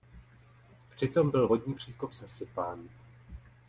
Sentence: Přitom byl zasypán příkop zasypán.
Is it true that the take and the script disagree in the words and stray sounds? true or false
true